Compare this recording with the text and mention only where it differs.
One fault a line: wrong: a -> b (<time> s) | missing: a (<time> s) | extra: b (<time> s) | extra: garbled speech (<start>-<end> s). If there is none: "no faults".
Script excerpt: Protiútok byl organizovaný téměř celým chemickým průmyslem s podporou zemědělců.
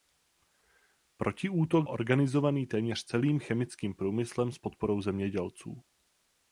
missing: byl (1.9 s)